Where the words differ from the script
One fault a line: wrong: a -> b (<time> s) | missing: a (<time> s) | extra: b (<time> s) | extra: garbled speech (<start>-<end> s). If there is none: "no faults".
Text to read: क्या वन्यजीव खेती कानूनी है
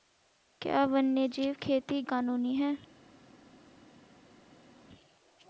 no faults